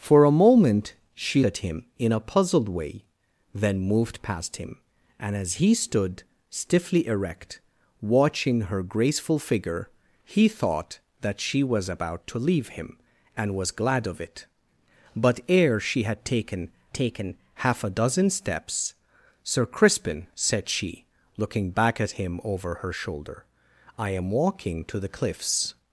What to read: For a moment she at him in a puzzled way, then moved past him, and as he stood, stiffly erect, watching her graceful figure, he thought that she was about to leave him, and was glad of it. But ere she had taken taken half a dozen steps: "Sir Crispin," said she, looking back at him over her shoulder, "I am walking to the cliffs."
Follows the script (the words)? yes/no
yes